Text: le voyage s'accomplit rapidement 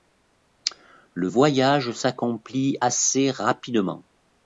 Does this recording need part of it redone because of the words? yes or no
yes